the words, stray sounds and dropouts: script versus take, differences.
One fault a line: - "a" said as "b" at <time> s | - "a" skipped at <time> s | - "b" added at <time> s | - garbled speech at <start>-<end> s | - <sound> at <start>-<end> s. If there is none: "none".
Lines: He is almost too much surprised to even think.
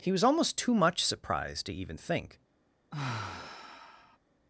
- "is" said as "was" at 0.1 s
- sigh at 2.9-4.2 s